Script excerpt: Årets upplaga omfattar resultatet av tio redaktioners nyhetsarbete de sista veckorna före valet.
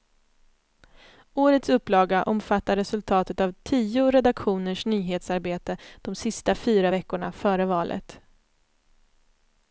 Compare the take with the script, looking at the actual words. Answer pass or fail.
fail